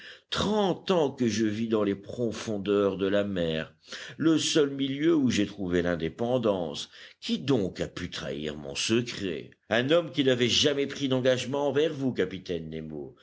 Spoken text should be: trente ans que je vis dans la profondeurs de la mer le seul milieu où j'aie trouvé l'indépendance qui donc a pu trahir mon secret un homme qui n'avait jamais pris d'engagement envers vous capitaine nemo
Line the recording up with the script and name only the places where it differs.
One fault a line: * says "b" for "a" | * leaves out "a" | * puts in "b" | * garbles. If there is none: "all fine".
* says "les" for "la"